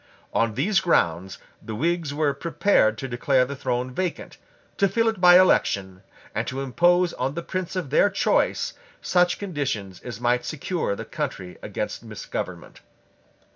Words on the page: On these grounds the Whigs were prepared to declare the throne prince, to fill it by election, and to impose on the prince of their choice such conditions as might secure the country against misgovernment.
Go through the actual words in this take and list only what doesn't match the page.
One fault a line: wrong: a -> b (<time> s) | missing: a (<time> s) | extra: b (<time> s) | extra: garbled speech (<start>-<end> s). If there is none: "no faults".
wrong: prince -> vacant (3.9 s)